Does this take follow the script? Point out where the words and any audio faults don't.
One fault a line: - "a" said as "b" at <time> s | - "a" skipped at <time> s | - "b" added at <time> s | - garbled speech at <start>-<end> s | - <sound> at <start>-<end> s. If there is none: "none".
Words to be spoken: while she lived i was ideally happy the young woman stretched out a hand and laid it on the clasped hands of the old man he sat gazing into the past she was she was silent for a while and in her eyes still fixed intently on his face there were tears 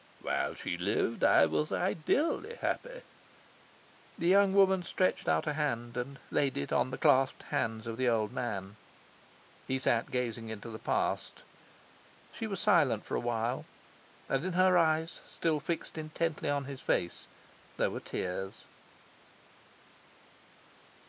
- "she was" skipped at 12.6 s